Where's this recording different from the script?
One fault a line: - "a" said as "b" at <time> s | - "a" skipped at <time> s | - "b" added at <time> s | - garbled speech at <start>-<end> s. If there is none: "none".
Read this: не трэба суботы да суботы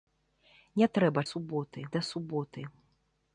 none